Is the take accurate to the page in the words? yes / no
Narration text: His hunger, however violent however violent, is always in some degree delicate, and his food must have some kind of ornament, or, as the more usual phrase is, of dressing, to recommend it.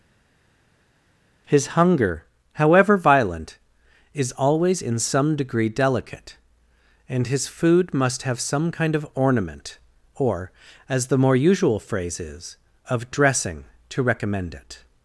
no